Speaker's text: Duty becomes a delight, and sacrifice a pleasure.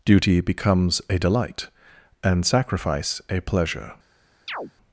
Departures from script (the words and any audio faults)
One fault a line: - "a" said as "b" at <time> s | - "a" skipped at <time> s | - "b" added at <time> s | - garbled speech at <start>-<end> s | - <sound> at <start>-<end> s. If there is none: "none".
- chirp at 4.5-4.7 s